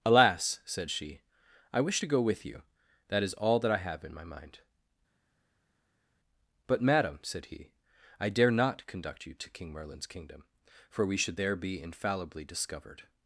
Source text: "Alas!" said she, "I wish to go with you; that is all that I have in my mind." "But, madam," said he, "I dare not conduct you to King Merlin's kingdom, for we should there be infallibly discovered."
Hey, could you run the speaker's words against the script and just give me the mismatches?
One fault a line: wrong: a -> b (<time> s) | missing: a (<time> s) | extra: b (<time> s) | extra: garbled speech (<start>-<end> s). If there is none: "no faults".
no faults